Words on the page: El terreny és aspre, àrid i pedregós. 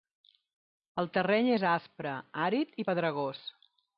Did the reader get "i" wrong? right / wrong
right